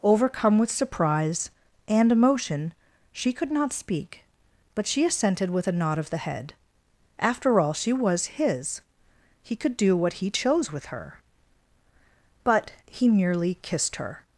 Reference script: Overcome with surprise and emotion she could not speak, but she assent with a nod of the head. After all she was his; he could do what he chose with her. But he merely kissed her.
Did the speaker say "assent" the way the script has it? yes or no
no